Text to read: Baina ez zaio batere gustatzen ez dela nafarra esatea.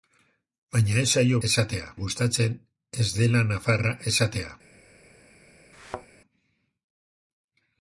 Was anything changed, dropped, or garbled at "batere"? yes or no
yes